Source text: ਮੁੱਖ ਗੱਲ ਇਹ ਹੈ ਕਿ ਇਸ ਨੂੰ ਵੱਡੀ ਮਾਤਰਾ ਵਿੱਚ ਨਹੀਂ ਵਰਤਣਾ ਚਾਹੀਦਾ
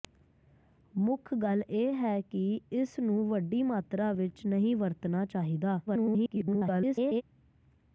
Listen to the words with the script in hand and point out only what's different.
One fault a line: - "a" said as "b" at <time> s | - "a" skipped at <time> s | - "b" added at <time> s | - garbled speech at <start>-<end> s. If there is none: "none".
- garbled speech at 5.9-7.2 s